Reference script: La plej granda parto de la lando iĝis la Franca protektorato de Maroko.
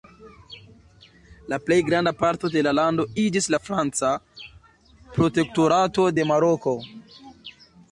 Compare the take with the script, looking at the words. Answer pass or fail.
pass